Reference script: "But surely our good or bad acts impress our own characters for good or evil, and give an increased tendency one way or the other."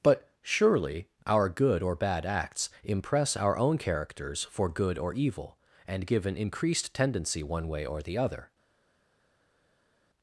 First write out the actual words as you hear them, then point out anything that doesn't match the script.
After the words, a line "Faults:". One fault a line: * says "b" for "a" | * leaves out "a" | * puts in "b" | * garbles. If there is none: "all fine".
"But surely our good or bad acts impress our own characters for good or evil, and give an increased tendency one way or the other."
Faults:
all fine